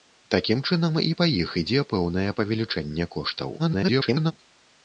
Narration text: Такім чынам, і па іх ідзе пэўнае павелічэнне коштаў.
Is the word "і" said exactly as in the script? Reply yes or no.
yes